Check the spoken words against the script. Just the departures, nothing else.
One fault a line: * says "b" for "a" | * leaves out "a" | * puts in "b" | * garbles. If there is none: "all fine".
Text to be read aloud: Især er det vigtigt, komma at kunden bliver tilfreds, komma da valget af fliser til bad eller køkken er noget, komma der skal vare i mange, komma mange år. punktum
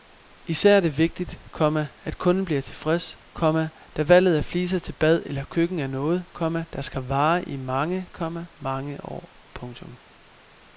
all fine